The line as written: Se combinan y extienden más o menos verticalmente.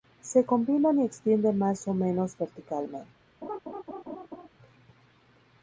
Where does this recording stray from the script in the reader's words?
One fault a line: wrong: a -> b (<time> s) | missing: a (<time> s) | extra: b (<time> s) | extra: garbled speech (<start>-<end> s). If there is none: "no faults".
no faults